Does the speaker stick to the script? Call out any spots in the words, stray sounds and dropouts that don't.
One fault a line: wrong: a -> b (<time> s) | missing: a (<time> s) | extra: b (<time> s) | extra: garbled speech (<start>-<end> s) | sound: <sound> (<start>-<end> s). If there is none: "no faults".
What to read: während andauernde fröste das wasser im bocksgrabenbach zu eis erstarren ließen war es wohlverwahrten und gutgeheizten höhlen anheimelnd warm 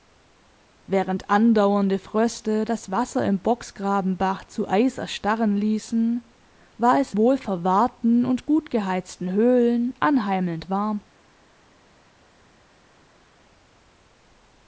no faults